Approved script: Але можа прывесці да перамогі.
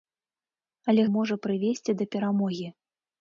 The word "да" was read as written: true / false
true